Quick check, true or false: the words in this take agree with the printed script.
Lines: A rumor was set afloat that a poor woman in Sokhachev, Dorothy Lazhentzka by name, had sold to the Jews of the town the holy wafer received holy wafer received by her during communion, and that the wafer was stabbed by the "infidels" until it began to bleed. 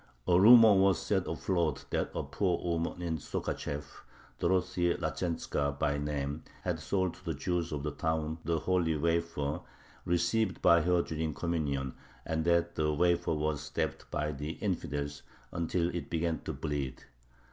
false